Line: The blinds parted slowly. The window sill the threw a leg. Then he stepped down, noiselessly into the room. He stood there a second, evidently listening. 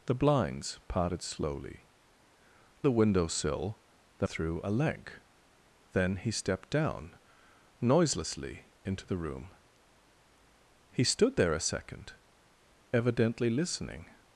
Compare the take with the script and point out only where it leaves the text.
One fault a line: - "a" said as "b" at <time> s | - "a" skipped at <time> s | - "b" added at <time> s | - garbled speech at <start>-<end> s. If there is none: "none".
none